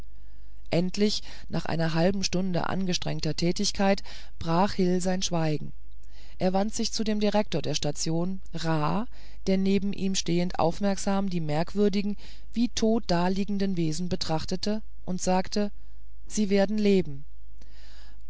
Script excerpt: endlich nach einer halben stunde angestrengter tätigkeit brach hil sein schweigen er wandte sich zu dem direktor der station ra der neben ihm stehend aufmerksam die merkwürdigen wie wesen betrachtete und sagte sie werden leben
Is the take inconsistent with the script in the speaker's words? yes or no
yes